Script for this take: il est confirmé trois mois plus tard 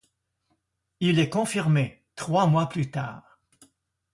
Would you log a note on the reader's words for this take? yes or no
no